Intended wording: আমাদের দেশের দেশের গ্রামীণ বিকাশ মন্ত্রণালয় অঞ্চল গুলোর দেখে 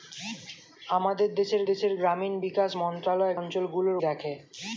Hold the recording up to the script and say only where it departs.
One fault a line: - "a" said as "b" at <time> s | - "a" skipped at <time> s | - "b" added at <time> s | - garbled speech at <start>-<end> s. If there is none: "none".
none